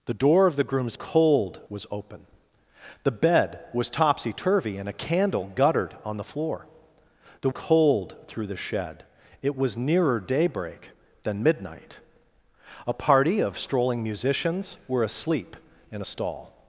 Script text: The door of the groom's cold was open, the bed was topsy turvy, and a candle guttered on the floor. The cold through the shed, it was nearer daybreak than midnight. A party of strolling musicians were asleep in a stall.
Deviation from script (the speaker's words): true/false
false